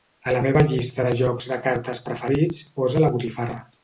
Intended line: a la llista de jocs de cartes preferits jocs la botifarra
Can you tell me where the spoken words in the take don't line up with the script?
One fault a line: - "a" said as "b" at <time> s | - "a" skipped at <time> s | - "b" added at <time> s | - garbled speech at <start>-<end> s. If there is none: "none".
- "meva" added at 0.4 s
- "jocs" said as "posa" at 2.8 s